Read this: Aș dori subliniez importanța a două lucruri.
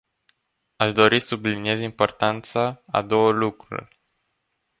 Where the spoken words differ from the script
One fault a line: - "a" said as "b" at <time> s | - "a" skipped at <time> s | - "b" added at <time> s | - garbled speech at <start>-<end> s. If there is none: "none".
none